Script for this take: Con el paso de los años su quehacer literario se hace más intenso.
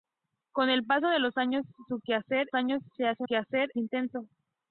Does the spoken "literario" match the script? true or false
false